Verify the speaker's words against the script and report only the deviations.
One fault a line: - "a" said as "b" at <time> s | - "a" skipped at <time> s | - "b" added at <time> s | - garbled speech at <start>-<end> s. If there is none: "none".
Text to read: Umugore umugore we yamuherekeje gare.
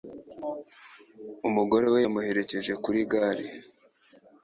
- "umugore" skipped at 1.9 s
- "kuri" added at 2.8 s